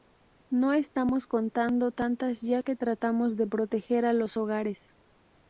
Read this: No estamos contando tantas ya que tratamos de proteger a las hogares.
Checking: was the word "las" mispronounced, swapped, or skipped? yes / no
yes